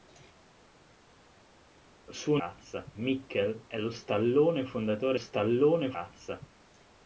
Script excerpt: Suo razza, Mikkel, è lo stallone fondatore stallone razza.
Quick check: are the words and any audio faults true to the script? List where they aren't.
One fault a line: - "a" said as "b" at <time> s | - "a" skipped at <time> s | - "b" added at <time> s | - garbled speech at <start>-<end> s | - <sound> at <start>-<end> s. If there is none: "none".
none